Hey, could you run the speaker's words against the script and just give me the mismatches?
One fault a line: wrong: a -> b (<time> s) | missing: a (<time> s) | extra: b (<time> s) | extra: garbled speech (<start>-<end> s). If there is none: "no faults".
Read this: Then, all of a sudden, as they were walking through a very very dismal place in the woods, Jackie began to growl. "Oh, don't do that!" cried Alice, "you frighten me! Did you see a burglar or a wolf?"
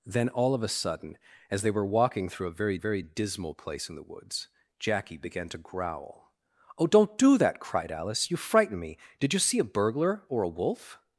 no faults